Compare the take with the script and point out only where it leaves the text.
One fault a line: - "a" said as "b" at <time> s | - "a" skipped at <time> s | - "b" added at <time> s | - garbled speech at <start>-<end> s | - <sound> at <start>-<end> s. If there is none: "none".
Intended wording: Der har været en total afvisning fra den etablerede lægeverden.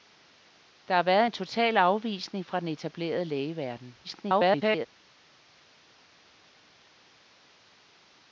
- garbled speech at 4.0-4.9 s